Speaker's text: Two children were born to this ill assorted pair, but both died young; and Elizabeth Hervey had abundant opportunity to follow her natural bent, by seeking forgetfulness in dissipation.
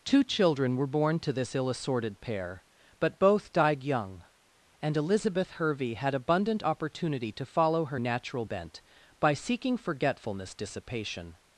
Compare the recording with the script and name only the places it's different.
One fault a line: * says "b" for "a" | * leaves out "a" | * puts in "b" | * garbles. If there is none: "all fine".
* leaves out "in"